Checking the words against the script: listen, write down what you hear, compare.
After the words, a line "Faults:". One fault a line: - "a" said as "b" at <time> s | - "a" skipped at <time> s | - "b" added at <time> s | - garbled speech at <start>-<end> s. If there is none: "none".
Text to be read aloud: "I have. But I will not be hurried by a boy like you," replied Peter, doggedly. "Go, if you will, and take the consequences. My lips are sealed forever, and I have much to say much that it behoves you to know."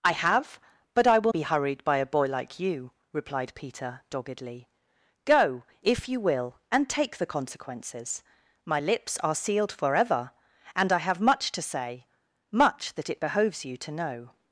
"I have. But I will be hurried by a boy like you," replied Peter, doggedly. "Go, if you will, and take the consequences. My lips are sealed forever, and I have much to say much that it behoves you to know."
Faults:
- "not" skipped at 1.3 s